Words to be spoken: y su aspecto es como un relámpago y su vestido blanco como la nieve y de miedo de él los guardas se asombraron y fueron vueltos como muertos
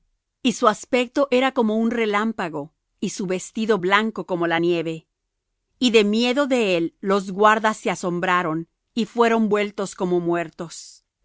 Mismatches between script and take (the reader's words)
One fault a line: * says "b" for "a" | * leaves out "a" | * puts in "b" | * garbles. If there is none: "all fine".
* says "era" for "es"